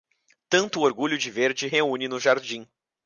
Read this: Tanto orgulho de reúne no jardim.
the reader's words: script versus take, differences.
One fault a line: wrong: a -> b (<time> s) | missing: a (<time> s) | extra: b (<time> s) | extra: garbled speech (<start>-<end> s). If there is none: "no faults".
extra: verde (1.3 s)